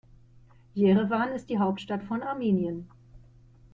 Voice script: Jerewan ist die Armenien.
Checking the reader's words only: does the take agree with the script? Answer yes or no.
no